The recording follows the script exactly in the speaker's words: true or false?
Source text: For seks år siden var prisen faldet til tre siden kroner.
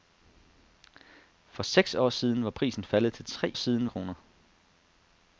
true